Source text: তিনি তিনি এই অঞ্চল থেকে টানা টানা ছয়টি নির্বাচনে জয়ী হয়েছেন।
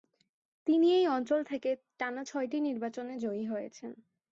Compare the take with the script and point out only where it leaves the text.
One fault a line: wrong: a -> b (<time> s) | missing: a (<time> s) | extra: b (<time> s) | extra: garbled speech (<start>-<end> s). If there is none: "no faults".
missing: তিনি (0.9 s)
missing: টানা (2.2 s)